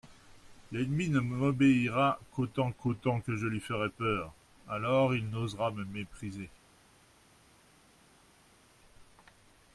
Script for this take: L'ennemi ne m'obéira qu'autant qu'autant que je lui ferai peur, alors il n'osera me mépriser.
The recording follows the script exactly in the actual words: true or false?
true